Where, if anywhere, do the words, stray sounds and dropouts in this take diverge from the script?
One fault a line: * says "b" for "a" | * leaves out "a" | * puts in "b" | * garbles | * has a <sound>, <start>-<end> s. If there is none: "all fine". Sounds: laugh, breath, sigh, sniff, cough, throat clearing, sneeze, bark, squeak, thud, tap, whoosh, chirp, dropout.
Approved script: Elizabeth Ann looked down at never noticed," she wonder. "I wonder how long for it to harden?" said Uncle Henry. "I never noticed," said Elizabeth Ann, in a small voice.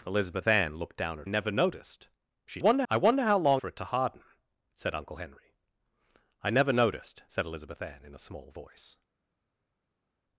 all fine